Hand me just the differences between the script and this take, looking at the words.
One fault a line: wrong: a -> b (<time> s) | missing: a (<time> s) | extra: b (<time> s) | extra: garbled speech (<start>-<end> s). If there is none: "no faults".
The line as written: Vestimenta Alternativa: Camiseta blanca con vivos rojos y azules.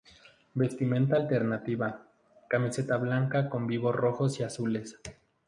no faults